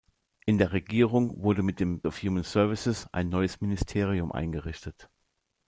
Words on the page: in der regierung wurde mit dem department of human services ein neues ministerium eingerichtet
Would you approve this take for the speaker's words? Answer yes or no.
no